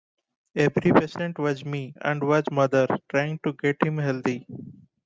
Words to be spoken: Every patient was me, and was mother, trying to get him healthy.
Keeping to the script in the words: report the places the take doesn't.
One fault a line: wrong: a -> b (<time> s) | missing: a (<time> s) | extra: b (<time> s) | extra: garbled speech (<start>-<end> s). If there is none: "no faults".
no faults